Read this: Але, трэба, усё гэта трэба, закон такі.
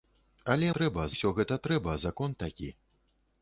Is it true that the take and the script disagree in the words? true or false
false